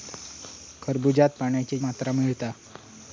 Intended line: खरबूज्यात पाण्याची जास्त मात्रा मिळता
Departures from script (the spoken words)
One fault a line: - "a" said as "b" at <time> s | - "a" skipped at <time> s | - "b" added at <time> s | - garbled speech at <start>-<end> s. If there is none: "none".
- "जास्त" skipped at 1.8 s